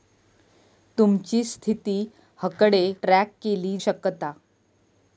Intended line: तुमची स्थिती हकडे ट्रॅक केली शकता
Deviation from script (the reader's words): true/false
false